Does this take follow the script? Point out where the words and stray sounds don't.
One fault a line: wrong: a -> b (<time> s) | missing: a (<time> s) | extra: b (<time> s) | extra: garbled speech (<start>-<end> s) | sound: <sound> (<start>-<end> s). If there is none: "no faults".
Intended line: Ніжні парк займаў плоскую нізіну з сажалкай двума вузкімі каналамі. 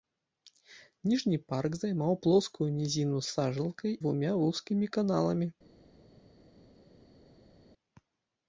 no faults